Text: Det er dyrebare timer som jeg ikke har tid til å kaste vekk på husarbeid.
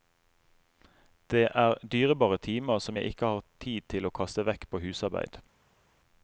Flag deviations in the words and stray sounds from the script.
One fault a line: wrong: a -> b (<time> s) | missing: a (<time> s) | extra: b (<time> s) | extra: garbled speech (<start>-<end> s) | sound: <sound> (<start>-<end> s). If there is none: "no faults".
no faults